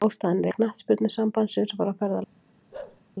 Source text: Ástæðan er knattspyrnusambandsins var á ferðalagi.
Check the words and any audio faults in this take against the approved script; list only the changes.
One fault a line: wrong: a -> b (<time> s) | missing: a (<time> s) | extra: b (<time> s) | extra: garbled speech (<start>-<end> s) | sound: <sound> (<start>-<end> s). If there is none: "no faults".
sound: bark (2.7-3.0 s)